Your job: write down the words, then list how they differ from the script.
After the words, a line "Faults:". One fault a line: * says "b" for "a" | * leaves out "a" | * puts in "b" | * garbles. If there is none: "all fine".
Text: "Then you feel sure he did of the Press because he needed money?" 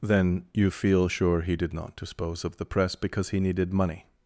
"Then you feel sure he did not dispose of the Press because he needed money?"
Faults:
* puts in "not dispose"